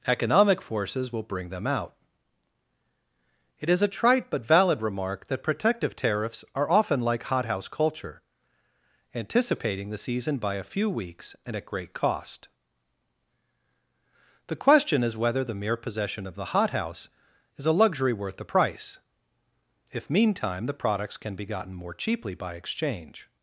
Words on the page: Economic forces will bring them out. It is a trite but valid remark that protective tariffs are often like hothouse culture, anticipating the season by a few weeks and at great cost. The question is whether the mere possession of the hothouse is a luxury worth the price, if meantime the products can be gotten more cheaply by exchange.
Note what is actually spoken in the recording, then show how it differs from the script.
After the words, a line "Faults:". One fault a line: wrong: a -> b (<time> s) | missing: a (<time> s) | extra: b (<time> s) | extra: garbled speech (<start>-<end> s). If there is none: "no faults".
Economic forces will bring them out. It is a trite but valid remark that protective tariffs are often like hothouse culture, anticipating the season by a few weeks and at great cost. The question is whether the mere possession of the hothouse is a luxury worth the price, if meantime the products can be gotten more cheaply by exchange.
Faults:
no faults